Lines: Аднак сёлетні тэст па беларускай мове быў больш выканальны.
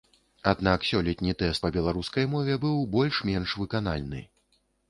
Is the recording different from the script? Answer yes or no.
yes